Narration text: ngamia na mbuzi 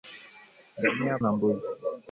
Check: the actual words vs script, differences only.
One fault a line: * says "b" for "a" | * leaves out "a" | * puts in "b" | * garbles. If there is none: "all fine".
all fine